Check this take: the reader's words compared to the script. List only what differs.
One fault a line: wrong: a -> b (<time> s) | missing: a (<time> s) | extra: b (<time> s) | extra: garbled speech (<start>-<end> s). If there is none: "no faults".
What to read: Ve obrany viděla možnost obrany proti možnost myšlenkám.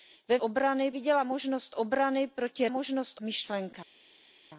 no faults